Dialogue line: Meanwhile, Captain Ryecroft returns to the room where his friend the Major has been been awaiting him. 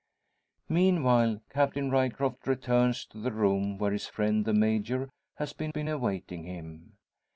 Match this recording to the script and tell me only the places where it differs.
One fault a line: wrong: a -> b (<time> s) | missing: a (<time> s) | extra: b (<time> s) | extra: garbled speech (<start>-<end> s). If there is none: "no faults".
no faults